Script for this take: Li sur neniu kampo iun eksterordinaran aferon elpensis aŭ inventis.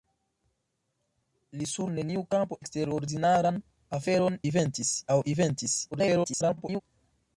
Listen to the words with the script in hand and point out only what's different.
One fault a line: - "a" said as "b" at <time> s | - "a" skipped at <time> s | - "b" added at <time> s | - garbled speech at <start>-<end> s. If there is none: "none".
- "iun" skipped at 2.6 s
- "elpensis" said as "inventis" at 4.5 s
- garbled speech at 5.9-6.8 s